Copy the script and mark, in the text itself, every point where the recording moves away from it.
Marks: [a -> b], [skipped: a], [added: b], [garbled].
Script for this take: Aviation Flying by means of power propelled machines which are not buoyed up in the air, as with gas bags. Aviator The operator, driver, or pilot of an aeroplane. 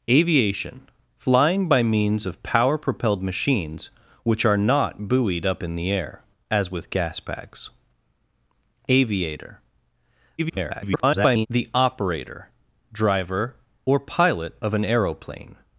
Aviation Flying by means of power propelled machines which are not buoyed up in the air, as with gas bags. Aviator [garbled] The operator, driver, or pilot of an aeroplane.